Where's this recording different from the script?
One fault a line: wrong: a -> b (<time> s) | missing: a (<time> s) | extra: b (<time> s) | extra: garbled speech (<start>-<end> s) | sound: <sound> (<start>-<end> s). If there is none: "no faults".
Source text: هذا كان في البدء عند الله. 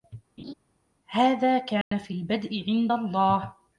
sound: laugh (0.4-0.5 s)
sound: dropout (1.8-1.9 s)